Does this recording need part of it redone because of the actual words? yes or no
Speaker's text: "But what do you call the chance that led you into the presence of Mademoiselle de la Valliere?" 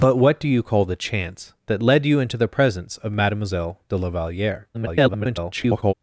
yes